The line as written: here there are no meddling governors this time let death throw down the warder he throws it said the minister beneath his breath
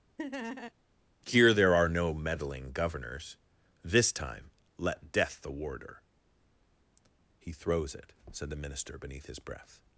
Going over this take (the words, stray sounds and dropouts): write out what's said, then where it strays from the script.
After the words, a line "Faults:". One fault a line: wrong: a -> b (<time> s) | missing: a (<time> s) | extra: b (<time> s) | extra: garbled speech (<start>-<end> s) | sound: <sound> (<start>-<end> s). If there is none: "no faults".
here there are no meddling governors this time let death the warder he throws it said the minister beneath his breath
Faults:
sound: laugh (0.2-0.7 s)
missing: throw down (5.4 s)